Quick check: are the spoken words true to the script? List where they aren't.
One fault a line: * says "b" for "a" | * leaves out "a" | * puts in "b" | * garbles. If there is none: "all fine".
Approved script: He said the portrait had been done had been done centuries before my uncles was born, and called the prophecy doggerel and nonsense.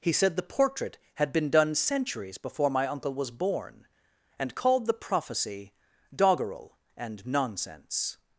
* leaves out "had been done"
* says "uncle" for "uncles"